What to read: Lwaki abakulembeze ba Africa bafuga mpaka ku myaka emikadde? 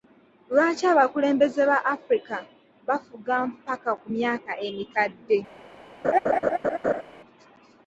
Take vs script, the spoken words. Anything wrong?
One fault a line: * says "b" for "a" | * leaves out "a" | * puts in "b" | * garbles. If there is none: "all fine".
all fine